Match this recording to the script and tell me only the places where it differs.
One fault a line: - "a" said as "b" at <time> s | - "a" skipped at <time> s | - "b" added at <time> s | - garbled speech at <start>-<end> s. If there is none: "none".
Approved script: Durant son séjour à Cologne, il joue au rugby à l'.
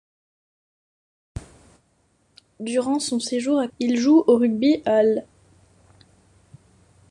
- "Cologne" skipped at 3.7 s